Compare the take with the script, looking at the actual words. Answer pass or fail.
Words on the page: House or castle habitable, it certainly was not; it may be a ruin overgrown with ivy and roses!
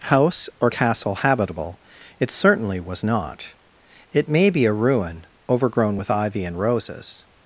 pass